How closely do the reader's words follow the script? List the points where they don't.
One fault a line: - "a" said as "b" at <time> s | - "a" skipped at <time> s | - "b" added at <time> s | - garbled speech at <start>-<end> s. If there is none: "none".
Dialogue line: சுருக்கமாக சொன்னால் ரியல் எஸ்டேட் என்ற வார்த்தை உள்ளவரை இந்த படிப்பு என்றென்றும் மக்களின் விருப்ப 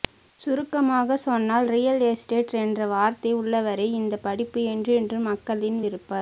none